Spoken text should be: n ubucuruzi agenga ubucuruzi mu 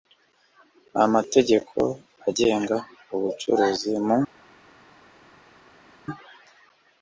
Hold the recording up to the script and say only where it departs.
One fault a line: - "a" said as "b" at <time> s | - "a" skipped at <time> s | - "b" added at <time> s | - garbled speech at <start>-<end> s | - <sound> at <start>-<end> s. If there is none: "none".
- "ubucuruzi" said as "amategeko" at 1.1 s